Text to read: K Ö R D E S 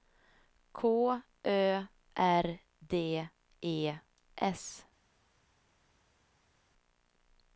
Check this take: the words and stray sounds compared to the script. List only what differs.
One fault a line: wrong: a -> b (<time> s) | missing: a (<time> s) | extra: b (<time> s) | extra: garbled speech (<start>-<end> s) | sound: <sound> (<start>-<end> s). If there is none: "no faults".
no faults